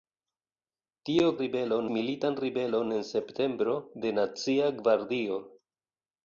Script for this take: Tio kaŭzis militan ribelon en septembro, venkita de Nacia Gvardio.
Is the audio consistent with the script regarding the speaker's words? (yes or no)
no